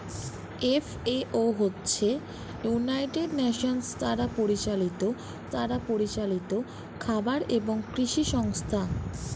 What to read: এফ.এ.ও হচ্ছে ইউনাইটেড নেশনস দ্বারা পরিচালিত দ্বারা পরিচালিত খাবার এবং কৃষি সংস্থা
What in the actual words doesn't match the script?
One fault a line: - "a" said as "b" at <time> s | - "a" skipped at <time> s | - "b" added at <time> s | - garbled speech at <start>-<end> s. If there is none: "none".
none